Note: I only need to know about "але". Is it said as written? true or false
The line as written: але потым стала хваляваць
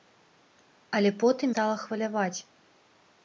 true